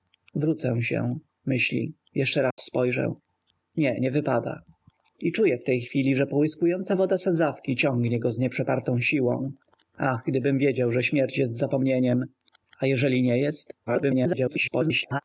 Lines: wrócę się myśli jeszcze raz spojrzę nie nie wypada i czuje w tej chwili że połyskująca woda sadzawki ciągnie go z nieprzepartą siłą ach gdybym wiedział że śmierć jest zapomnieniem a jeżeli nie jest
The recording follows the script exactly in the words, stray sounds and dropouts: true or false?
false